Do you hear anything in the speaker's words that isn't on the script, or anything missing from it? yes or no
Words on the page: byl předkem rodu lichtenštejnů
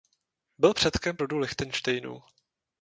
no